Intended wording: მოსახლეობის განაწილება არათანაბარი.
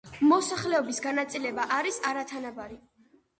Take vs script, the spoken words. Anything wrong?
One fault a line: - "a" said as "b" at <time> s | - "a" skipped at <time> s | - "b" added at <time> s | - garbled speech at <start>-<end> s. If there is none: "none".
- "არის" added at 1.8 s